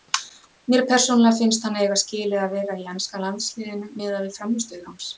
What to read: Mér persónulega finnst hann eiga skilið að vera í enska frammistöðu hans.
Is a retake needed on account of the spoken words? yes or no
yes